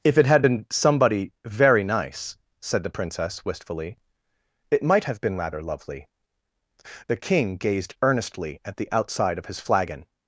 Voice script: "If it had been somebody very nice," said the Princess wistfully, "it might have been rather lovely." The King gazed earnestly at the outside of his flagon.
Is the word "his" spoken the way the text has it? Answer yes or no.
yes